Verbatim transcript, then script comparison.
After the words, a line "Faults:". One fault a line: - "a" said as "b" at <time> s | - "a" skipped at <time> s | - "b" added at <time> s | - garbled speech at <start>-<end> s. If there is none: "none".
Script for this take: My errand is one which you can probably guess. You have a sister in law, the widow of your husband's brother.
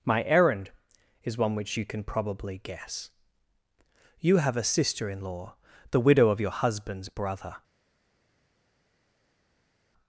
My errand is one which you can probably guess. You have a sister in law, the widow of your husband's brother.
Faults:
none